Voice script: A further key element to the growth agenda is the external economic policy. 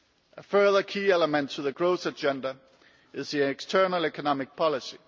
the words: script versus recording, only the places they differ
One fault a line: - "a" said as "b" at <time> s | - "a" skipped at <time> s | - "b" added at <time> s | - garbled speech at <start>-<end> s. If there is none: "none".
none